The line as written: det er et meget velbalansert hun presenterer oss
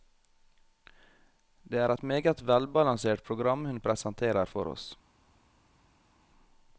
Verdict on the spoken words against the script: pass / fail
fail